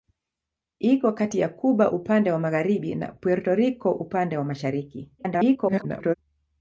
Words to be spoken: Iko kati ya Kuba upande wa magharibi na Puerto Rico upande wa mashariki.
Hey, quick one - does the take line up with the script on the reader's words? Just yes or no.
no